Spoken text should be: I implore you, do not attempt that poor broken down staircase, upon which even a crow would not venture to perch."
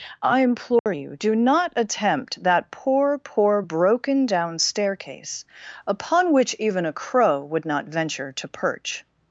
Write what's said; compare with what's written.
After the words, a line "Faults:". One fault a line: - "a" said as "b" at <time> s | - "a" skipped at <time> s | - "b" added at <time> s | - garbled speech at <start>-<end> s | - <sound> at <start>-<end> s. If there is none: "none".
I implore you, do not attempt that poor poor broken down staircase, upon which even a crow would not venture to perch."
Faults:
- dropout at 0.8-0.9 s
- "poor" added at 3.2 s